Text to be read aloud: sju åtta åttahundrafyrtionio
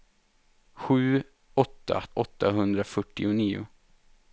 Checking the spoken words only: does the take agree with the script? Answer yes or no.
yes